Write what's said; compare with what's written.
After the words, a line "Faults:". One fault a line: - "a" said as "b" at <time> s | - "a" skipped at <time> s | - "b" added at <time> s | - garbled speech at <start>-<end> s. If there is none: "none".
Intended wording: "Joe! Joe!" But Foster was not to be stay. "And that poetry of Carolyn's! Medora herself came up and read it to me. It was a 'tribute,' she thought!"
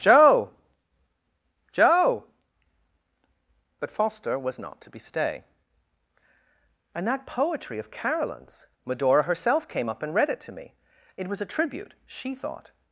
"Joe! Joe!" But Foster was not to be stay. "And that poetry of Carolyn's! Medora herself came up and read it to me. It was a 'tribute,' she thought!"
Faults:
none